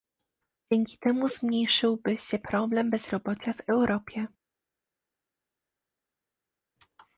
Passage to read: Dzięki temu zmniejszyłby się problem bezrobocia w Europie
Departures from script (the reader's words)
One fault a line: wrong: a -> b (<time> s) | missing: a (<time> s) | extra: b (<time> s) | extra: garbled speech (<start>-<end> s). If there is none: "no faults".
no faults